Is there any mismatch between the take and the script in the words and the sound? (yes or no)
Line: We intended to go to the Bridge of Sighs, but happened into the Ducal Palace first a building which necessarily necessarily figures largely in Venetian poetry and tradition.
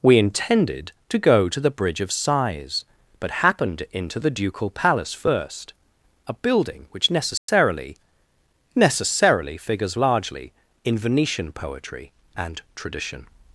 yes